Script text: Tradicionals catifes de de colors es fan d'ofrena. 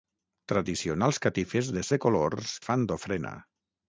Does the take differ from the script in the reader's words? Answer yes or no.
no